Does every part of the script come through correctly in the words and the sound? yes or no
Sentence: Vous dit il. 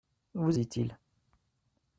yes